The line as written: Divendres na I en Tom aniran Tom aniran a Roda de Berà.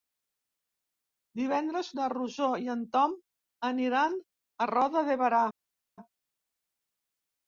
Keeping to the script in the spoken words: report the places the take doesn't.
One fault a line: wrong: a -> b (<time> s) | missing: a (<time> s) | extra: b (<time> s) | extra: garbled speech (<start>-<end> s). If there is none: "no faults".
extra: Rosó (2.1 s)
missing: Tom aniran (4.2 s)